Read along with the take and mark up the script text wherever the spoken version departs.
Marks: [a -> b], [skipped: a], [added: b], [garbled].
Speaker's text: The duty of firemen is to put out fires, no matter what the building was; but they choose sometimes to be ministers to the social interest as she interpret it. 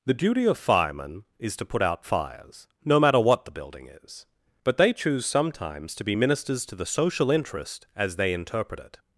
The duty of firemen is to put out fires, no matter what the building [was; -> is] but they choose sometimes to be ministers to the social interest as [she -> they] interpret it.